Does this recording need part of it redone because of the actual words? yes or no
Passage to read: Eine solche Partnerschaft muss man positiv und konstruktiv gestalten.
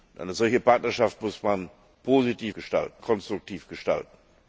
yes